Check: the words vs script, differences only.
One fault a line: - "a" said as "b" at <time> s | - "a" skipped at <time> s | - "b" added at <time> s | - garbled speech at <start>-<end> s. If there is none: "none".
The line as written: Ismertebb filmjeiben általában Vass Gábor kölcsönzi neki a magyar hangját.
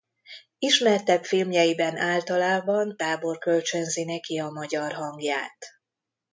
- "Vass" skipped at 3.0 s